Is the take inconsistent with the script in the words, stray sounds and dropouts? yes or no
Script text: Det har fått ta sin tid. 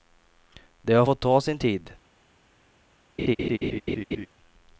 yes